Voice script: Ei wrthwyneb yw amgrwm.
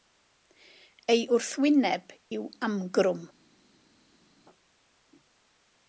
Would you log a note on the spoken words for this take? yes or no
no